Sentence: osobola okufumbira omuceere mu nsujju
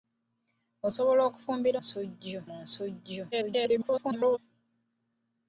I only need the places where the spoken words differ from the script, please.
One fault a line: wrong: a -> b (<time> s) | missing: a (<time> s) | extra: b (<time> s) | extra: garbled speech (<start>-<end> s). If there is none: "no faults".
wrong: omuceere -> nsujju (1.8 s)
extra: garbled speech (3.3-4.4 s)